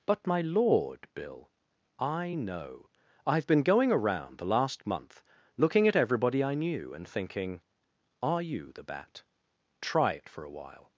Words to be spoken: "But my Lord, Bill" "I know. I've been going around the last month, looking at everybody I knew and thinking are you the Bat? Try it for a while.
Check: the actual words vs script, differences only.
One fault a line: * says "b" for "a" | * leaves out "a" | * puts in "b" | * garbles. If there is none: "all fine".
all fine